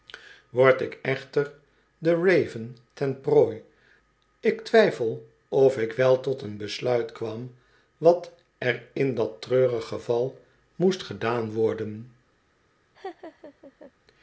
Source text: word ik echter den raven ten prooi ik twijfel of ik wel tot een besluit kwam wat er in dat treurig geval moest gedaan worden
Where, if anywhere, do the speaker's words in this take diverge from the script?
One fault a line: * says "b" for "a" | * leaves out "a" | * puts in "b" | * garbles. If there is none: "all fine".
all fine